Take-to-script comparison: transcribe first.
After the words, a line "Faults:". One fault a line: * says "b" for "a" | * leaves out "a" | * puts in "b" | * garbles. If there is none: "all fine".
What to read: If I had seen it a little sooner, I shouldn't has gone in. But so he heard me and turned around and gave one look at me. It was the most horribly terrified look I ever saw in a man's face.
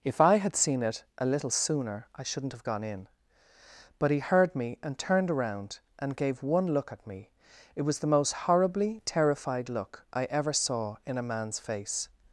If I had seen it a little sooner, I shouldn't have gone in. But he heard me and turned around and gave one look at me. It was the most horribly terrified look I ever saw in a man's face.
Faults:
* says "have" for "has"
* leaves out "so"